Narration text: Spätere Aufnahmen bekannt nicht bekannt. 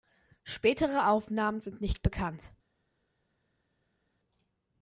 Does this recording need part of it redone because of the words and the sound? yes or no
yes